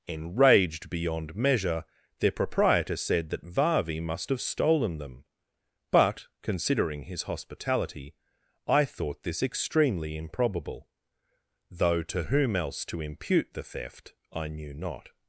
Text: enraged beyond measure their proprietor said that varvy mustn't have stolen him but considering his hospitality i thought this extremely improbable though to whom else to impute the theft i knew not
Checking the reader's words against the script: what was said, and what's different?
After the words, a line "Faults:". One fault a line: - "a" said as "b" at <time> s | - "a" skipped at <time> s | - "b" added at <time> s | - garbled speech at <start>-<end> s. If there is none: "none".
enraged beyond measure their proprietor said that varvy must have stolen them but considering his hospitality i thought this extremely improbable though to whom else to impute the theft i knew not
Faults:
- "mustn't" said as "must" at 4.0 s
- "him" said as "them" at 5.0 s